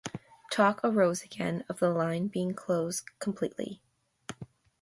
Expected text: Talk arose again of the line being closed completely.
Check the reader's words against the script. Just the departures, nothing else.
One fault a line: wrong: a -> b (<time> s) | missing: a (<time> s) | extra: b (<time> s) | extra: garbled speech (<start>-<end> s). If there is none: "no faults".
no faults